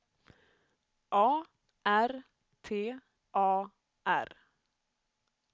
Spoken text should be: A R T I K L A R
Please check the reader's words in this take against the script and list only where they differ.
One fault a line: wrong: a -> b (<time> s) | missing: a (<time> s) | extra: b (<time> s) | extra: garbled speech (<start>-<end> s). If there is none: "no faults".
missing: I K L (2.9 s)